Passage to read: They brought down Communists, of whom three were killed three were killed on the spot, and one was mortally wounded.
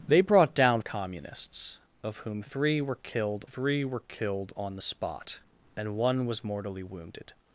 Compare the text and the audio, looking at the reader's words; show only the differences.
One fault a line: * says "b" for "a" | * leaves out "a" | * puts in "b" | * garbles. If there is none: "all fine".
all fine